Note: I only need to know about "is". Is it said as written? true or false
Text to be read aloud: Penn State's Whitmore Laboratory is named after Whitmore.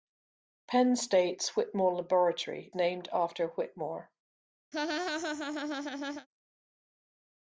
false